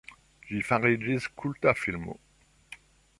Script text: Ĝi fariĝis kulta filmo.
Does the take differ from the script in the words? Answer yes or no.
no